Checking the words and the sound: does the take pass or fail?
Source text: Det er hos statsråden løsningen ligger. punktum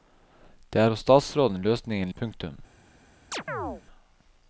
fail